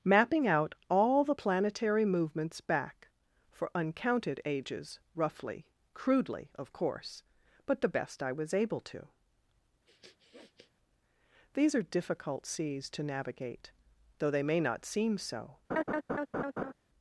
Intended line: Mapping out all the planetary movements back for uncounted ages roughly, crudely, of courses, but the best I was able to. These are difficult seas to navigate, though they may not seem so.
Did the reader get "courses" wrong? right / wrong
wrong